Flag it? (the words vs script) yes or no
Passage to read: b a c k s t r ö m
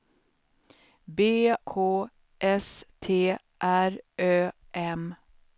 yes